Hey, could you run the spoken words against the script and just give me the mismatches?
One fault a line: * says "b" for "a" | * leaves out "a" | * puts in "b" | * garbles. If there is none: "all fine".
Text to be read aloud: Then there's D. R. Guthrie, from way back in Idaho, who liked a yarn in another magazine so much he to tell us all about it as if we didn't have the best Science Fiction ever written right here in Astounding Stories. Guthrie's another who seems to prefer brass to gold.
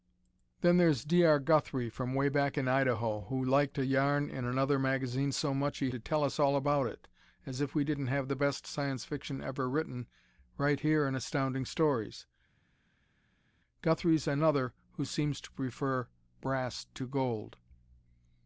all fine